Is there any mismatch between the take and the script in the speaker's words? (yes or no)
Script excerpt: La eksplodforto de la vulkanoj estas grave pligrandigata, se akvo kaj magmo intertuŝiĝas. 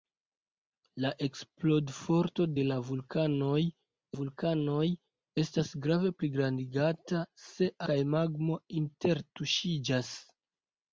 yes